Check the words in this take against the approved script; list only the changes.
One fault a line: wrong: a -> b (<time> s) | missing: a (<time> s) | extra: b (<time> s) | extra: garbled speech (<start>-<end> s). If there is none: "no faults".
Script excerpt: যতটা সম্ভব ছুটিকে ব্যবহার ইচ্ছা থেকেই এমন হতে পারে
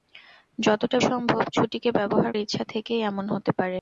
no faults